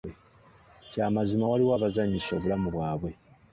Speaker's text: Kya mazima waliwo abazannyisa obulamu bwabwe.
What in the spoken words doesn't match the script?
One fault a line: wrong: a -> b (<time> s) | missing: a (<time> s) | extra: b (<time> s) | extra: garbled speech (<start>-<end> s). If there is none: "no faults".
no faults